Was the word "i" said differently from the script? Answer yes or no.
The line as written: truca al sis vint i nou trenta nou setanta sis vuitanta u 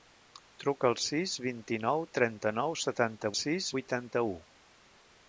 no